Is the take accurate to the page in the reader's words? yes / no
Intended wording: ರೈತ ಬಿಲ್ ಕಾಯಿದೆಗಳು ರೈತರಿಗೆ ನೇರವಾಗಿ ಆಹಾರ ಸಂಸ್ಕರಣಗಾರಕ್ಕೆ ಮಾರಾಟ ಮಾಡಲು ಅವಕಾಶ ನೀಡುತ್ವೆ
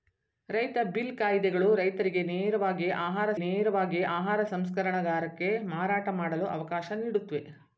no